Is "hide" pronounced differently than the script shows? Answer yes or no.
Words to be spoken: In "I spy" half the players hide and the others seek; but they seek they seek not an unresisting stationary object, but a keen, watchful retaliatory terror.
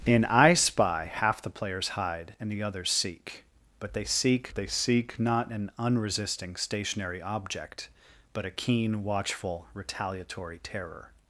no